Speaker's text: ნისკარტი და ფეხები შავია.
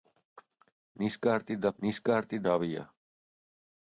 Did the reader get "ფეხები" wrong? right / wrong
wrong